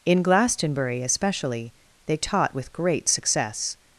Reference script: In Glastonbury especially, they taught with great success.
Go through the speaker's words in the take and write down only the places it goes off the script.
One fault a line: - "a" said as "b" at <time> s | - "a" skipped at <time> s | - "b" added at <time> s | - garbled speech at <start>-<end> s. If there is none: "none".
none